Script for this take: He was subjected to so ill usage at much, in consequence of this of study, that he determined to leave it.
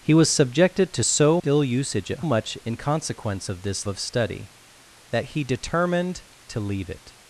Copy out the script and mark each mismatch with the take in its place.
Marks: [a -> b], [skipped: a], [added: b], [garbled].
He was subjected to so ill usage at much, in consequence of this of study, that he determined to leave it.